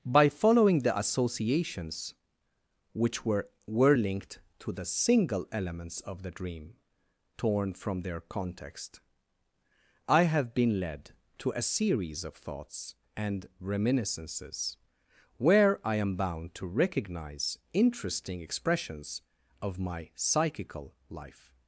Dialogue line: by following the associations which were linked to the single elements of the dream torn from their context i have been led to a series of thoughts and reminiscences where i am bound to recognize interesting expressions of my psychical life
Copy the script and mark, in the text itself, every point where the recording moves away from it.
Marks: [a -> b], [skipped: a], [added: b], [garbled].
by following the associations which were [added: were] linked to the single elements of the dream torn from their context i have been led to a series of thoughts and reminiscences where i am bound to recognize interesting expressions of my psychical life